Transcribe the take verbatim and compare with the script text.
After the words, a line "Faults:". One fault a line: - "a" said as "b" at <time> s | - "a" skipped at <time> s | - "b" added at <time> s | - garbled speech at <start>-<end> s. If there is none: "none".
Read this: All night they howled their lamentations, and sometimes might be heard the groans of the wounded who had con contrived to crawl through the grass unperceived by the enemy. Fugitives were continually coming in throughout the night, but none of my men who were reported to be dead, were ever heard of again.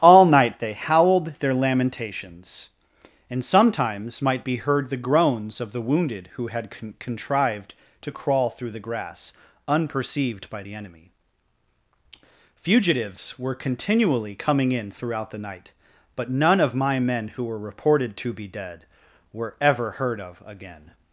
All night they howled their lamentations, and sometimes might be heard the groans of the wounded who had con contrived to crawl through the grass unperceived by the enemy. Fugitives were continually coming in throughout the night, but none of my men who were reported to be dead, were ever heard of again.
Faults:
none